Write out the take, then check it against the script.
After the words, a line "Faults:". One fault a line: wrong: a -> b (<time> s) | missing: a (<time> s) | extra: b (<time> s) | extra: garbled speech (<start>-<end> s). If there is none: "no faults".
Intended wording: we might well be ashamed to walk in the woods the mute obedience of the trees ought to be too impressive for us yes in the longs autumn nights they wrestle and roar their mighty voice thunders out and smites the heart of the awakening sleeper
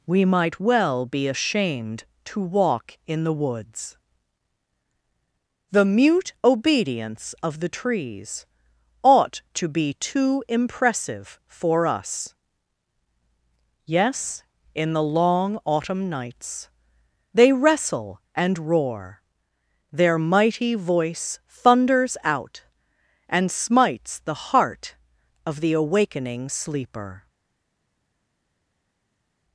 we might well be ashamed to walk in the woods the mute obedience of the trees ought to be too impressive for us yes in the long autumn nights they wrestle and roar their mighty voice thunders out and smites the heart of the awakening sleeper
Faults:
wrong: longs -> long (15.0 s)